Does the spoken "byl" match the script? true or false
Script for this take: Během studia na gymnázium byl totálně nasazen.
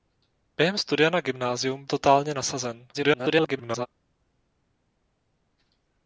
false